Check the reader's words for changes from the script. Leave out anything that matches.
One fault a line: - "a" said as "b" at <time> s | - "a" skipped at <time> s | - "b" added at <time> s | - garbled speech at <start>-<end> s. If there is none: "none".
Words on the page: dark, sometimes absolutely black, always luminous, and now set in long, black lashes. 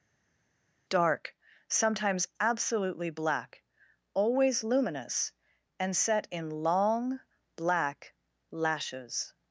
- "now" skipped at 5.9 s